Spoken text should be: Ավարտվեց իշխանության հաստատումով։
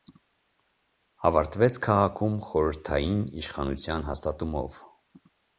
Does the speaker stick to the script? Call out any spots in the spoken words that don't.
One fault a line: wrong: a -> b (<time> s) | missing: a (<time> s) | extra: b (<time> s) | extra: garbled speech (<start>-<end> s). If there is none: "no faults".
extra: քաղաքում խորհրդային (1.8 s)